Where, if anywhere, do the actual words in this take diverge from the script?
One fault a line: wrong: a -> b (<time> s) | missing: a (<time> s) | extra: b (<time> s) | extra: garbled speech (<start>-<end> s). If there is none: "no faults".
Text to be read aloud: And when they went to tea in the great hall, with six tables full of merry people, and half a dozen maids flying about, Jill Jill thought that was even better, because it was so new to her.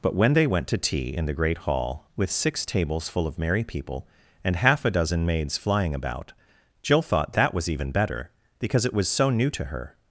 wrong: And -> But (0.0 s)
missing: Jill (7.0 s)